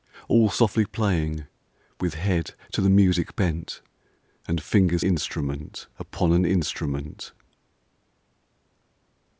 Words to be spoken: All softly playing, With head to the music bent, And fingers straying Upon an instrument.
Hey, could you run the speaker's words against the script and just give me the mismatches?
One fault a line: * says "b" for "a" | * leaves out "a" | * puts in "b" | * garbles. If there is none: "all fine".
* says "instrument" for "straying"